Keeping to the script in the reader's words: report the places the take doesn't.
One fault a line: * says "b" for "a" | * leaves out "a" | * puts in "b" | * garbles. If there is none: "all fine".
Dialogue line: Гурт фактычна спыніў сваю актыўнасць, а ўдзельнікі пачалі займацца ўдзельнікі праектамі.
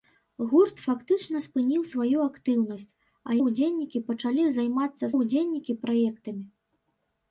all fine